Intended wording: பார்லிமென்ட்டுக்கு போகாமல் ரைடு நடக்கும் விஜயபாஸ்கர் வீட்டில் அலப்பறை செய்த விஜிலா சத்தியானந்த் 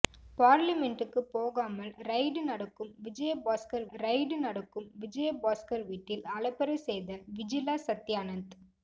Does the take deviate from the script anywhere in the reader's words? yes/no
yes